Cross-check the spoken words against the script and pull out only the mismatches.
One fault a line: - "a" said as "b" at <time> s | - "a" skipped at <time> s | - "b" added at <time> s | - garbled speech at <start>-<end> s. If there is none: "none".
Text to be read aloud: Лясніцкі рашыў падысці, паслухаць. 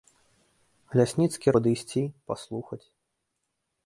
- "рашыў" skipped at 1.5 s